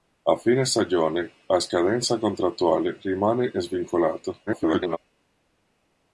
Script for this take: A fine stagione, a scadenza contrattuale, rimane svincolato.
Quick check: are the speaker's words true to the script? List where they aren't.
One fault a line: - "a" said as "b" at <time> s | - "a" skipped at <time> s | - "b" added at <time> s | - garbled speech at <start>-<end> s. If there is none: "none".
- garbled speech at 4.5-5.0 s